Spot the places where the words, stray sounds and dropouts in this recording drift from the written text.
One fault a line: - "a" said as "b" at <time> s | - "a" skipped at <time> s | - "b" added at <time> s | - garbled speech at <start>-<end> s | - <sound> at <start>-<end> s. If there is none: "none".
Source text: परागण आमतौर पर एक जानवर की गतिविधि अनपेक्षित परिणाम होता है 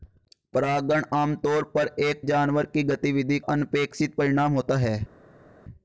none